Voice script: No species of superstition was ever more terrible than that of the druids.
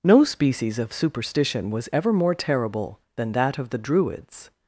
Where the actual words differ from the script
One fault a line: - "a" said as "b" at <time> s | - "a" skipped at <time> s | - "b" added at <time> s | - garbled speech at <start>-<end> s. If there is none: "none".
none